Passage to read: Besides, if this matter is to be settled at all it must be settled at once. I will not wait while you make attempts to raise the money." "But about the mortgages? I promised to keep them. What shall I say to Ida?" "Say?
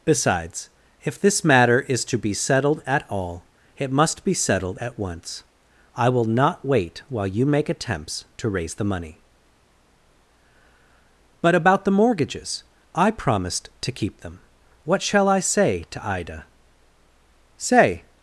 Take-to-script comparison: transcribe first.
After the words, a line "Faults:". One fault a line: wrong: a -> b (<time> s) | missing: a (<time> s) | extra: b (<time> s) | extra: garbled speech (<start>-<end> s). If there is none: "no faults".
Besides, if this matter is to be settled at all it must be settled at once. I will not wait while you make attempts to raise the money." "But about the mortgages? I promised to keep them. What shall I say to Ida?" "Say?
Faults:
no faults